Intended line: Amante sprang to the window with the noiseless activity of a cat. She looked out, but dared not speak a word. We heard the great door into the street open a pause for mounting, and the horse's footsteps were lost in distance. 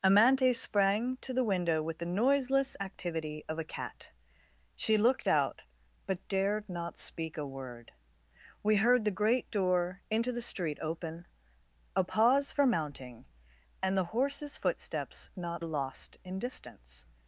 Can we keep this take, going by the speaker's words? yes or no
no